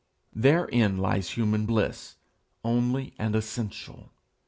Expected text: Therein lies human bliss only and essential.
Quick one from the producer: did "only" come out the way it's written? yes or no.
yes